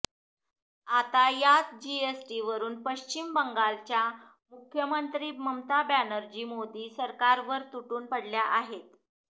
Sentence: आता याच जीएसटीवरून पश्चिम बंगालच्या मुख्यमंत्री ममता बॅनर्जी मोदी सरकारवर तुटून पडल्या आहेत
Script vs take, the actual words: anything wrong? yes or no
no